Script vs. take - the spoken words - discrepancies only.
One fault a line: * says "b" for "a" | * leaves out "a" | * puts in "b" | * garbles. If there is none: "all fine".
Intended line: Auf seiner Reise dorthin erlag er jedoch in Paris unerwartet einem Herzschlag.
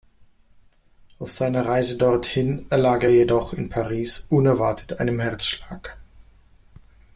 all fine